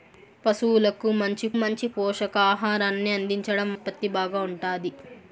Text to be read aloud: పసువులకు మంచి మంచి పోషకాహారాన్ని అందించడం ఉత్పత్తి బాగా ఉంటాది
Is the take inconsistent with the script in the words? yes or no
no